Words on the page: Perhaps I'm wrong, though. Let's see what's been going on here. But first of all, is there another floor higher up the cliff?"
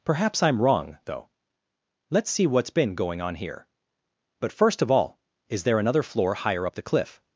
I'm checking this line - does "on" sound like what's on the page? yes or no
yes